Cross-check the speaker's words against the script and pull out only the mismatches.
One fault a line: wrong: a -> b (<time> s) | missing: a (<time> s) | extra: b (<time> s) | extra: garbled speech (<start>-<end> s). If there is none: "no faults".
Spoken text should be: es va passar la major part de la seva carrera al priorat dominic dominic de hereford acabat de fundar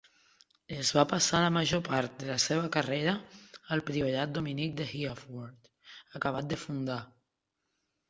missing: dominic (4.8 s)